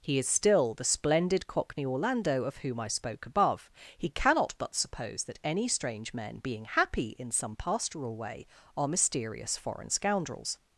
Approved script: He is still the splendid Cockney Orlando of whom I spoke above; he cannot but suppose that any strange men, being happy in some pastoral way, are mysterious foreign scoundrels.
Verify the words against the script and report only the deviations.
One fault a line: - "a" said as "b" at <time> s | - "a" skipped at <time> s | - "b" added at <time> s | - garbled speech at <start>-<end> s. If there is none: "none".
none